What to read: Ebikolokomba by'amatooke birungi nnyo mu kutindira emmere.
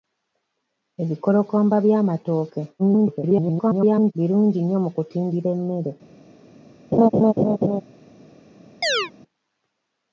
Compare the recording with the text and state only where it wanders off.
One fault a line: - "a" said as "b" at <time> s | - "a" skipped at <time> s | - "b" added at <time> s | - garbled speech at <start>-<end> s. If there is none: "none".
- garbled speech at 2.8-4.1 s